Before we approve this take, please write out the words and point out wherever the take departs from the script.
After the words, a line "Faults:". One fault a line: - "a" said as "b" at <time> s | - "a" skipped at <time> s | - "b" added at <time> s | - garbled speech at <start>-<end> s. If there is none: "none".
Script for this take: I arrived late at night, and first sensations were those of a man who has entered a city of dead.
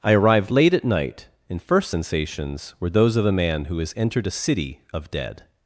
I arrived late at night, and first sensations were those of a man who has entered a city of dead.
Faults:
none